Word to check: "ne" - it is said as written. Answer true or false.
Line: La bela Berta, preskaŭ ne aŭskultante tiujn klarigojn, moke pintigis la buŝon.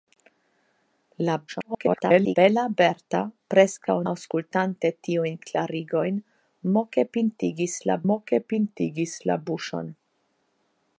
false